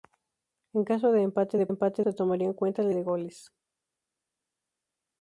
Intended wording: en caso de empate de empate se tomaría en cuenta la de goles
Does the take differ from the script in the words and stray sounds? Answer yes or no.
no